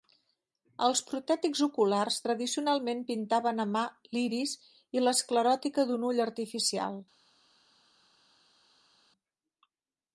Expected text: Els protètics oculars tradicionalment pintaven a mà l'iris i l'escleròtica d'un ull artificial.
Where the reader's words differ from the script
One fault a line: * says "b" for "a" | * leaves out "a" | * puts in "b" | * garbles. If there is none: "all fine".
all fine